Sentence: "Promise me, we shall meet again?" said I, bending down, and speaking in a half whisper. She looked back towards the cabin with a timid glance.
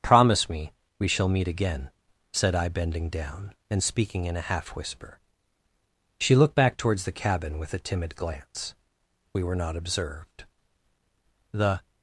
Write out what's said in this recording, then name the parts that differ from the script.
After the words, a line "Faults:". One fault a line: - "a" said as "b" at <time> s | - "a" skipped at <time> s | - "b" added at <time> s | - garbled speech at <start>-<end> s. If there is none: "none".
"Promise me, we shall meet again?" said I, bending down, and speaking in a half whisper. She looked back towards the cabin with a timid glance. We were not observed. The
Faults:
- "We were not observed The" added at 9.3 s